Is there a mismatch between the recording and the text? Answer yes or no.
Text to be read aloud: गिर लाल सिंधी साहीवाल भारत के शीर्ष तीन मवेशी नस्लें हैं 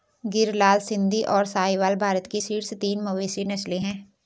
yes